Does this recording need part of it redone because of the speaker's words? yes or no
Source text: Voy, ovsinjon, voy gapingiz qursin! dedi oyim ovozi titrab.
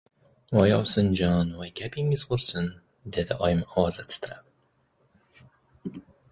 no